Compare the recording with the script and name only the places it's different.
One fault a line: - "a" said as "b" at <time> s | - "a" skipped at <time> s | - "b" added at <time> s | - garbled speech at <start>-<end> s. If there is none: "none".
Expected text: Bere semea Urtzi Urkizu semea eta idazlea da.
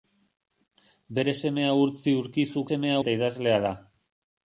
none